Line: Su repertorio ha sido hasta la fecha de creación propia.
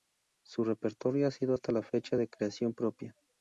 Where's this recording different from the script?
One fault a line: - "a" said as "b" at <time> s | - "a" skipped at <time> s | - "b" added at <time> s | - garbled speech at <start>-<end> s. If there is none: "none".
none